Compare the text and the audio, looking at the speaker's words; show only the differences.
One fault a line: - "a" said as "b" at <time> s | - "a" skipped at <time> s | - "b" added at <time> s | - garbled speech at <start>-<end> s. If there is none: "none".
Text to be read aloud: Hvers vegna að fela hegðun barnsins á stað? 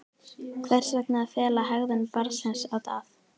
none